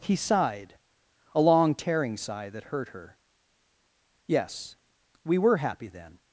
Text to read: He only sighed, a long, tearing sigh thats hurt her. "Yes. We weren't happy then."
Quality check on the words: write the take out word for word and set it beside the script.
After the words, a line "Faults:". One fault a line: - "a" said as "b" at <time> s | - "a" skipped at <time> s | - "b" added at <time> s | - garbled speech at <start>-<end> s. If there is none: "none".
He sighed, a long, tearing sigh that hurt her. "Yes. We were happy then."
Faults:
- "only" skipped at 0.1 s
- "thats" said as "that" at 2.5 s
- "weren't" said as "were" at 5.4 s